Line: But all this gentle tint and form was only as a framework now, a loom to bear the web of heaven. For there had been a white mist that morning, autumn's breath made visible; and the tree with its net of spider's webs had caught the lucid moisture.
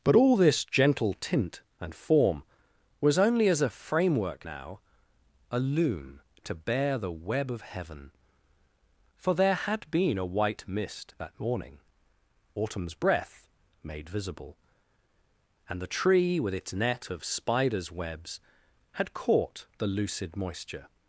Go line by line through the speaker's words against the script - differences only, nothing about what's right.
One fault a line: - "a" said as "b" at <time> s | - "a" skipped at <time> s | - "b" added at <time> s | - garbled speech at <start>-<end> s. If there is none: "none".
none